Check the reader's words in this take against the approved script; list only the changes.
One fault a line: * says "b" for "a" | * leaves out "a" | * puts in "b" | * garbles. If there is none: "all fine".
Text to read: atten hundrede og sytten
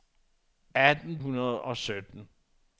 all fine